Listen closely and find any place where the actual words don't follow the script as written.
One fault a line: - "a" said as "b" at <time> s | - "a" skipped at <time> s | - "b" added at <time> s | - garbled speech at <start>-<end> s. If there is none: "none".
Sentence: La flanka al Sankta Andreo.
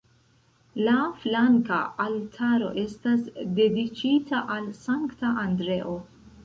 - "altaro estas dediĉita" added at 2.0 s